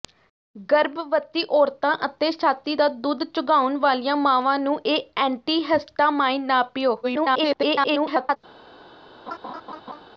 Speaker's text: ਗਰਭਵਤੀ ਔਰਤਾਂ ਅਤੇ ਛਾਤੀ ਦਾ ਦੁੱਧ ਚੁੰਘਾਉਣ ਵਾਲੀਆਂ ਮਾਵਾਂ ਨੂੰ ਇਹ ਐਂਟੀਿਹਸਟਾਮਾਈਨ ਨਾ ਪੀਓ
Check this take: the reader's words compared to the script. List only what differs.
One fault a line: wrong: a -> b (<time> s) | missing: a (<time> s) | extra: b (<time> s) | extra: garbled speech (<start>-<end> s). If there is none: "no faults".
extra: garbled speech (7.0-8.4 s)